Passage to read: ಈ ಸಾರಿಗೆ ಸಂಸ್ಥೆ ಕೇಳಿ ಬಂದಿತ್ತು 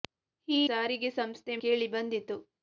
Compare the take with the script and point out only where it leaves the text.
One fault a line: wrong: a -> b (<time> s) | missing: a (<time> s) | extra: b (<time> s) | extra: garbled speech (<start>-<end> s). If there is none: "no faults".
no faults